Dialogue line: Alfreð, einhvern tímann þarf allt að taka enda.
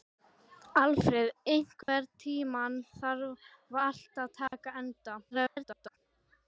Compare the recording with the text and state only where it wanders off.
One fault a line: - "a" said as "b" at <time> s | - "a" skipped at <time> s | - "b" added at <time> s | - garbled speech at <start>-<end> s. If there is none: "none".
- garbled speech at 5.3-6.0 s